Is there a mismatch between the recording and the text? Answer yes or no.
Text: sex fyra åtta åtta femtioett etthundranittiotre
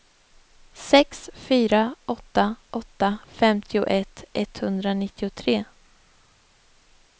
no